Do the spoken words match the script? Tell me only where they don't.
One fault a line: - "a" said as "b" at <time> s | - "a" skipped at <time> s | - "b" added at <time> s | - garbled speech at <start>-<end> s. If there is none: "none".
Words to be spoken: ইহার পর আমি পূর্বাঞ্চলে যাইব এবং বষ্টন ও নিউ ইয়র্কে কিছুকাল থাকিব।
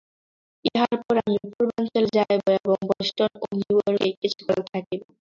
none